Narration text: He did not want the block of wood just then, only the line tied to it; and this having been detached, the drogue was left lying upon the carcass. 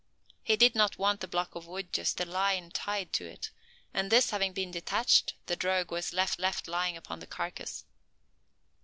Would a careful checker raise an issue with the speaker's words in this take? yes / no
yes